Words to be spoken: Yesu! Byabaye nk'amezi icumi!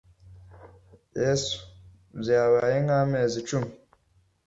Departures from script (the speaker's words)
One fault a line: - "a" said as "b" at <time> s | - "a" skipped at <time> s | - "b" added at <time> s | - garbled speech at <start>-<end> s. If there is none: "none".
none